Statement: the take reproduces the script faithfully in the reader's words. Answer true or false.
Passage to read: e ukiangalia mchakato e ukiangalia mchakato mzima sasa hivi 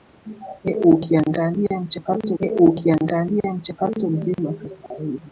true